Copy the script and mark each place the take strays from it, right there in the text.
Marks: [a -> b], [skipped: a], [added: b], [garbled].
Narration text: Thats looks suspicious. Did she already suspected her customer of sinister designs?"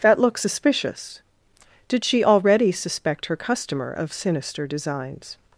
[Thats -> That] looks suspicious. Did she already [suspected -> suspect] her customer of sinister designs?"